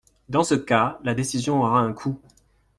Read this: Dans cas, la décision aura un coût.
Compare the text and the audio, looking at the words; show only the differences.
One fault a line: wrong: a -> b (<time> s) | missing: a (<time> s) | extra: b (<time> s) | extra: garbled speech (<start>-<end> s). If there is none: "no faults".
extra: ce (0.4 s)